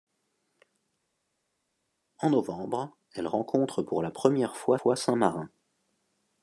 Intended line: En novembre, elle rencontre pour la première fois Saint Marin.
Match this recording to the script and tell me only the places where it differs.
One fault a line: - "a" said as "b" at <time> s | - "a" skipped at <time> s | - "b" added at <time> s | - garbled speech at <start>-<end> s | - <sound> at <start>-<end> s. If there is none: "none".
- "fois" added at 4.7 s